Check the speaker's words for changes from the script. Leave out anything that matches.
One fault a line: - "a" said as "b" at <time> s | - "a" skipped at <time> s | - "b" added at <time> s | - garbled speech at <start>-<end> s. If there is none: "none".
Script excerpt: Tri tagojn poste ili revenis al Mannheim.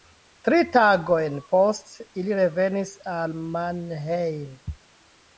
none